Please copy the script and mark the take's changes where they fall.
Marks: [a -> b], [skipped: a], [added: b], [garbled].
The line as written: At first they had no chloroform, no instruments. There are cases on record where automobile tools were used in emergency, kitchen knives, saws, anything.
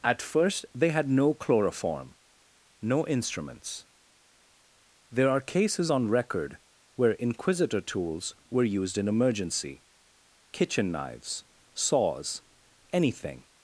At first they had no chloroform, no instruments. There are cases on record where [automobile -> inquisitor] tools were used in emergency, kitchen knives, saws, anything.